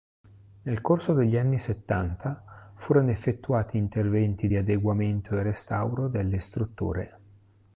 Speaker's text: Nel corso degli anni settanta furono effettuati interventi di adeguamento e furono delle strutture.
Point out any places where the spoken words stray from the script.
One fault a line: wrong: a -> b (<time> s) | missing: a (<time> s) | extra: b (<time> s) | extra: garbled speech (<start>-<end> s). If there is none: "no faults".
wrong: furono -> restauro (5.4 s)